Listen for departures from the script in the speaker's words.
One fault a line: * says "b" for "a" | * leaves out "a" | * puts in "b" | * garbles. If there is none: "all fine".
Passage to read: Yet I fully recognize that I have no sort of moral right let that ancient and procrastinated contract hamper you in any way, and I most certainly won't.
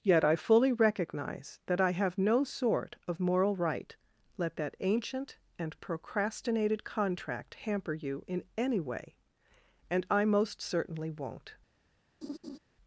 all fine